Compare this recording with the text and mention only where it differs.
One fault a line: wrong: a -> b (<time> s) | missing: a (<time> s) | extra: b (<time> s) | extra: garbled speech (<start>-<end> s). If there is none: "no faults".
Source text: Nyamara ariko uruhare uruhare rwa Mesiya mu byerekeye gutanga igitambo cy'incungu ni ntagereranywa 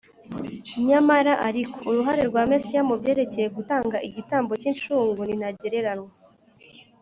missing: uruhare (2.2 s)